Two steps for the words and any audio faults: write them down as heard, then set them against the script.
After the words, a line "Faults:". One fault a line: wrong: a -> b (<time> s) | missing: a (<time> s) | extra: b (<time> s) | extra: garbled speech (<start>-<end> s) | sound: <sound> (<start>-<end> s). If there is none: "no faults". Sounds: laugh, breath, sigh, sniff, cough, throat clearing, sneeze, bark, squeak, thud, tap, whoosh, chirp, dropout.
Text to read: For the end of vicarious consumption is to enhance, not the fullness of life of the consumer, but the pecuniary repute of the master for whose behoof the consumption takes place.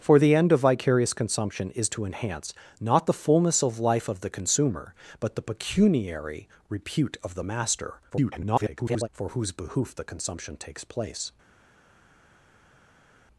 For the end of vicarious consumption is to enhance, not the fullness of life of the consumer, but the pecuniary repute of the master [garbled] for whose behoof the consumption takes place.
Faults:
extra: garbled speech (8.1-9.1 s)